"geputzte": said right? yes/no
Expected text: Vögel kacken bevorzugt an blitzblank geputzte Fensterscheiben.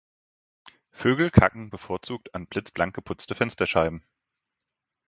yes